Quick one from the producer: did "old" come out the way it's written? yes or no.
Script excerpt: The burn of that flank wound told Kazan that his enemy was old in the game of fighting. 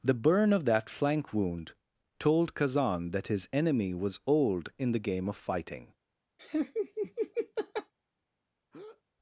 yes